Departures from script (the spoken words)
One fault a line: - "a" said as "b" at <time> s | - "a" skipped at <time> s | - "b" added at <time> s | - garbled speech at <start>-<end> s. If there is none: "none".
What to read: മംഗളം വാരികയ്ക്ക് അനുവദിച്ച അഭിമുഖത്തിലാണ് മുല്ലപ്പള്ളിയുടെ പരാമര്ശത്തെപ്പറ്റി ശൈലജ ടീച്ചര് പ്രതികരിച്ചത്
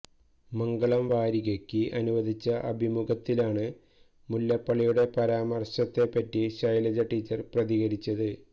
none